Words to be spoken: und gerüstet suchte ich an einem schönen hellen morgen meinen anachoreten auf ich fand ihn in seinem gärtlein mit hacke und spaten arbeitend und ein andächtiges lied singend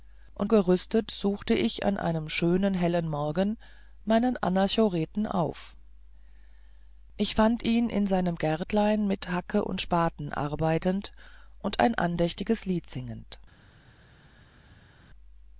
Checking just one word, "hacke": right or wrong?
right